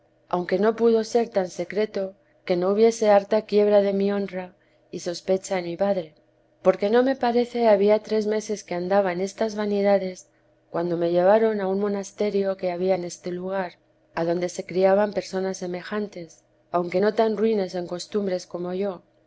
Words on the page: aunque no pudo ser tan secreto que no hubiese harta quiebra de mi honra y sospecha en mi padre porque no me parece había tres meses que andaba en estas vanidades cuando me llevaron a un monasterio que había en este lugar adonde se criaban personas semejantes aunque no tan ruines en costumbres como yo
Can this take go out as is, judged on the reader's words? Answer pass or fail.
pass